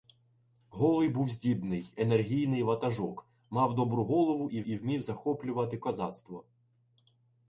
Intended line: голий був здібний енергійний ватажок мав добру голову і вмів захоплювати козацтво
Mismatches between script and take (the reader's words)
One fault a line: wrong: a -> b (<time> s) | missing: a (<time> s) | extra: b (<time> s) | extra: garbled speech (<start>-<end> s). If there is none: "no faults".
extra: і (4.6 s)